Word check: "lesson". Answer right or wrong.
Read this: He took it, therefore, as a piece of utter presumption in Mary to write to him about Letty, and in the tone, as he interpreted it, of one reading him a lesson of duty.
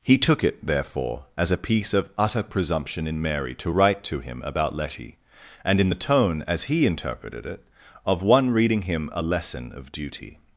right